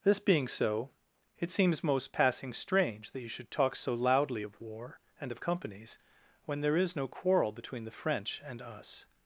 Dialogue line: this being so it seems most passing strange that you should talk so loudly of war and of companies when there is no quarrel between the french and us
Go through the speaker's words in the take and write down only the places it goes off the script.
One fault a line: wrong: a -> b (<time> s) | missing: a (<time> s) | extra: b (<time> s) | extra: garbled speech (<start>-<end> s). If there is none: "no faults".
no faults